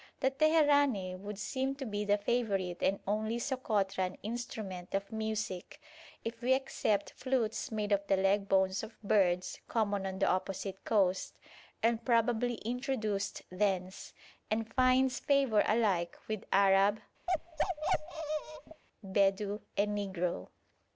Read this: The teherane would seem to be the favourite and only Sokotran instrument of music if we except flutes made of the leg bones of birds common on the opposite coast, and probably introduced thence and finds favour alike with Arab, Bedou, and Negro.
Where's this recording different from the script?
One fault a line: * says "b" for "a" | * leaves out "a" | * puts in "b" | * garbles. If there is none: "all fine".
all fine